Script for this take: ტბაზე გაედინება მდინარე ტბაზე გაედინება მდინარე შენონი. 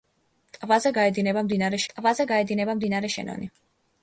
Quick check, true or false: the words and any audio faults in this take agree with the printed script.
true